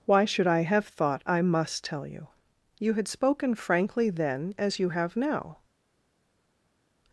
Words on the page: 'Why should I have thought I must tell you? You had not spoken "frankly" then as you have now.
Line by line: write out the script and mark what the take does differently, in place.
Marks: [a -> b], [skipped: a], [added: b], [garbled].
'Why should I have thought I must tell you? You had [skipped: not] spoken "frankly" then as you have now.